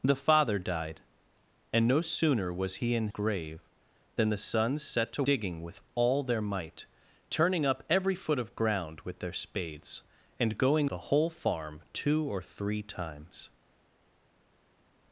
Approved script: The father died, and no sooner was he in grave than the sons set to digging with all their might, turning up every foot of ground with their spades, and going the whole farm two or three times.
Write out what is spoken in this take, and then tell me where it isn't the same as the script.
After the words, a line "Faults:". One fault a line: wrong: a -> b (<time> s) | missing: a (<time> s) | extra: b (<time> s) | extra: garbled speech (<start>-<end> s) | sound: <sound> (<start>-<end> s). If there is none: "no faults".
The father died, and no sooner was he in grave than the sons set to digging with all their might, turning up every foot of ground with their spades, and going the whole farm two or three times.
Faults:
no faults